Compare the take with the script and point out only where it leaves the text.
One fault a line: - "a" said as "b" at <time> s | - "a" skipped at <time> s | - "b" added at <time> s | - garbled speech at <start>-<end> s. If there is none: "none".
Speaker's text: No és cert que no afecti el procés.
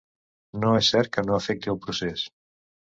none